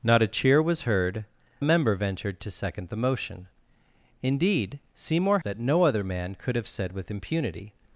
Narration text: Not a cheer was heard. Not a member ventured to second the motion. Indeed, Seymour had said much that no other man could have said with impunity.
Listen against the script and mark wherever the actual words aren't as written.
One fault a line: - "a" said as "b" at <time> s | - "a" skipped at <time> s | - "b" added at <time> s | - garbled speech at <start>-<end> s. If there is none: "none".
- "Not" skipped at 1.2 s
- "had said much" skipped at 5.4 s